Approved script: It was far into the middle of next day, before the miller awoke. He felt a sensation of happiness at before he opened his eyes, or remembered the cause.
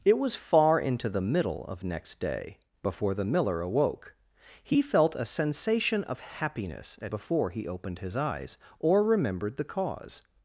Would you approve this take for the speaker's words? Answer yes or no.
yes